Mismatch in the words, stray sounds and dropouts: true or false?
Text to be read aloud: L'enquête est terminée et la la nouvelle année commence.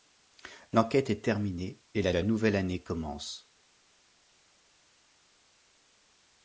false